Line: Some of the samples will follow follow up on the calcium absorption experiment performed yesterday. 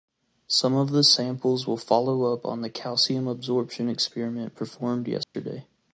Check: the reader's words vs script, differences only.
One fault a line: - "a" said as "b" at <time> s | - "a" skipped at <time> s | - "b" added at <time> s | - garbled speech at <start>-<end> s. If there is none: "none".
- "follow" skipped at 2.3 s